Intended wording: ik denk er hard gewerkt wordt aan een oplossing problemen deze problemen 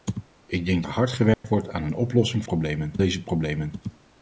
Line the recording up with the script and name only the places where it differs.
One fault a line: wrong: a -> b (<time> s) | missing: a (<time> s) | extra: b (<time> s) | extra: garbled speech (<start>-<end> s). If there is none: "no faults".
no faults